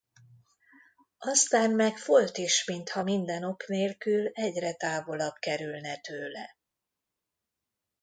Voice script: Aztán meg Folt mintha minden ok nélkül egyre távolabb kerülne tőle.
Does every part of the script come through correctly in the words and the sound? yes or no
no